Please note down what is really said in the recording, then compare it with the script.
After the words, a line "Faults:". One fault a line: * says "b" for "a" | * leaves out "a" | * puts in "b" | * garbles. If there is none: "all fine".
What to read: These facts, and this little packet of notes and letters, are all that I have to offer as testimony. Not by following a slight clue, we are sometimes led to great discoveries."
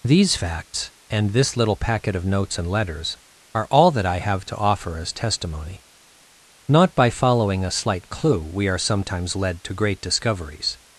These facts, and this little packet of notes and letters, are all that I have to offer as testimony. Not by following a slight clue, we are sometimes led to great discoveries."
Faults:
all fine